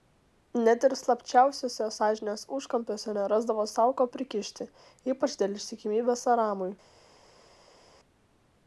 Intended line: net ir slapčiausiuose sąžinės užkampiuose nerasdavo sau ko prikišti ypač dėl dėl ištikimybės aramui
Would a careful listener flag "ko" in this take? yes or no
no